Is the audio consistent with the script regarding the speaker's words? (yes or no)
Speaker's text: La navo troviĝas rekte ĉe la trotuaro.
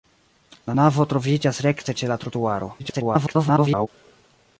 no